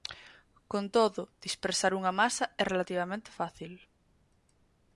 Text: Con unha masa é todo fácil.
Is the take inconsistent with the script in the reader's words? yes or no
yes